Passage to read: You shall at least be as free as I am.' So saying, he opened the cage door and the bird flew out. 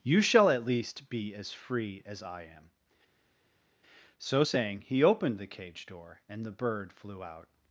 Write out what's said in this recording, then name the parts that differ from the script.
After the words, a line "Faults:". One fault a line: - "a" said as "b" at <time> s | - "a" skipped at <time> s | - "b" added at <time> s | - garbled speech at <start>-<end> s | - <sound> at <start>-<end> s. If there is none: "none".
You shall at least be as free as I am.' So saying, he opened the cage door and the bird flew out.
Faults:
none